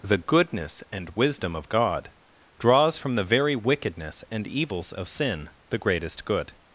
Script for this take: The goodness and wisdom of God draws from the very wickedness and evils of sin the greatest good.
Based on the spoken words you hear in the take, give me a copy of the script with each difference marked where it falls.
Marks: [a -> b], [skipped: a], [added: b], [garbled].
The goodness and wisdom of God draws from the very wickedness and evils of sin the greatest good.